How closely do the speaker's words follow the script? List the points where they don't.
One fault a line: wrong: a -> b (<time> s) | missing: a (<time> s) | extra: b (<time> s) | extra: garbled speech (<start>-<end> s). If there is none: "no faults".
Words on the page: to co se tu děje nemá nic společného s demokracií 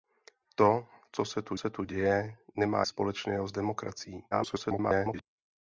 extra: se tu (1.5 s)
missing: nic (2.9 s)
extra: garbled speech (4.3-5.2 s)